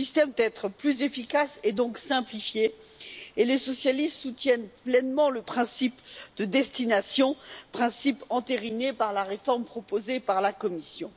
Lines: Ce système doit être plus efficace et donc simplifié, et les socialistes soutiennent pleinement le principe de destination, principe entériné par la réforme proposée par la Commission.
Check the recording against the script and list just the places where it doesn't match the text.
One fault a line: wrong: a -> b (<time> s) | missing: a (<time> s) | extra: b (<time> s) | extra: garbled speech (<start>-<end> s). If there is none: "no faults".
missing: doit (0.3 s)